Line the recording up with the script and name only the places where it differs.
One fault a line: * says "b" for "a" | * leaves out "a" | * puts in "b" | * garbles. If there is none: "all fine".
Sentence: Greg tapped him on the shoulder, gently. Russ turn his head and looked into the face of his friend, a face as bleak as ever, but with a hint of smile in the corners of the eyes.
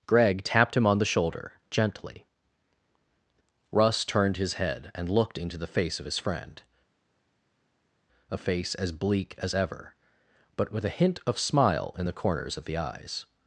* says "turned" for "turn"